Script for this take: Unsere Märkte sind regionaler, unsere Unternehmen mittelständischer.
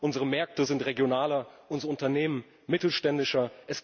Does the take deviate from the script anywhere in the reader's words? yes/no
no